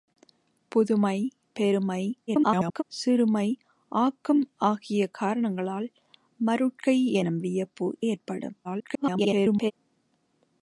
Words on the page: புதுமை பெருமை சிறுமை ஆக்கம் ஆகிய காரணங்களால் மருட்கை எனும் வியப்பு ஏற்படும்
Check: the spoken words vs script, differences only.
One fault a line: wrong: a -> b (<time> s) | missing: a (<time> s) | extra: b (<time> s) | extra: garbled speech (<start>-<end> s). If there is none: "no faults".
extra: garbled speech (2.3-2.8 s)
extra: garbled speech (8.6-9.7 s)